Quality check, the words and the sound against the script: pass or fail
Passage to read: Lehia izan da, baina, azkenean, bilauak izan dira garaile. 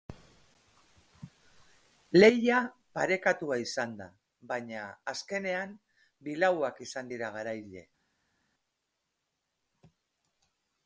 fail